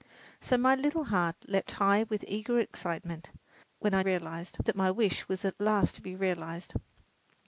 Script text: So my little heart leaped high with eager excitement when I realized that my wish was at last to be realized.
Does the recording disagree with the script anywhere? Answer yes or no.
no